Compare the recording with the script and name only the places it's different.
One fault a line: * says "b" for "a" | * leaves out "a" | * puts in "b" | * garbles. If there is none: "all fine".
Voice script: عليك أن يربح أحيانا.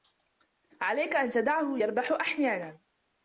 * puts in "تدعه"